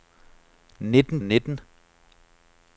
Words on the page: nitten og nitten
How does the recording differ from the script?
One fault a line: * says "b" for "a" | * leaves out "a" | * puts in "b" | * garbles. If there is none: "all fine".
all fine